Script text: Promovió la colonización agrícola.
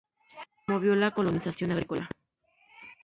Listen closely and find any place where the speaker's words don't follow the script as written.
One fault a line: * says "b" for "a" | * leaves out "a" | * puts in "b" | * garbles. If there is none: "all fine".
all fine